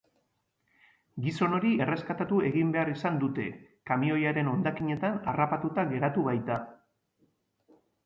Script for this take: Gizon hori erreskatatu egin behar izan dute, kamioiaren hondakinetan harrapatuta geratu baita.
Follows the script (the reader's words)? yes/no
yes